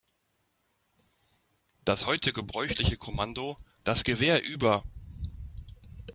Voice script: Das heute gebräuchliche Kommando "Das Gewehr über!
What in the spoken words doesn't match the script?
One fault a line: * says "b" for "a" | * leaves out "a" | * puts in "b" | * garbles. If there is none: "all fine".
all fine